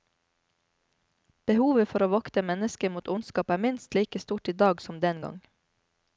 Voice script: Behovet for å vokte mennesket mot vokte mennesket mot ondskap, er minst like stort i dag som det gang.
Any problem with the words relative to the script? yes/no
yes